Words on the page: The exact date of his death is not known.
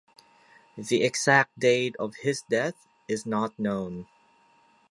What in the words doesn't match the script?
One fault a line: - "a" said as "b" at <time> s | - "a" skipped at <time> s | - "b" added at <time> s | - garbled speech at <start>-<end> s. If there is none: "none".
none